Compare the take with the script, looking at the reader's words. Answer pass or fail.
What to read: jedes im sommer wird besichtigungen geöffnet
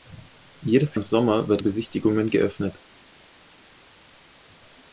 pass